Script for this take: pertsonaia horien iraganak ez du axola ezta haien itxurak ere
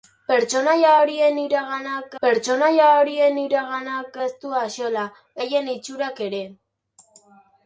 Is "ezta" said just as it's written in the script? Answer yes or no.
no